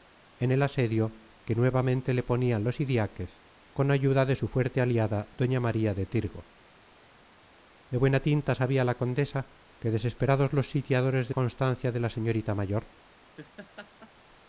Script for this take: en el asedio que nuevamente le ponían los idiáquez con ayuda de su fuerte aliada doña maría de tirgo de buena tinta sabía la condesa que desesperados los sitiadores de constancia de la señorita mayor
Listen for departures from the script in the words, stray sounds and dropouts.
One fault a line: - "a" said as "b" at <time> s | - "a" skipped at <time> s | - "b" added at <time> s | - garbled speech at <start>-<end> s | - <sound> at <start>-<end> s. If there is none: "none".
- laugh at 13.4-14.1 s